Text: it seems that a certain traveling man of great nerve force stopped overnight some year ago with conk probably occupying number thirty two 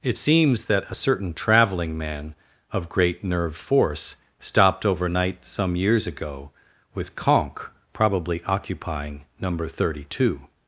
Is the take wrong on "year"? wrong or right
wrong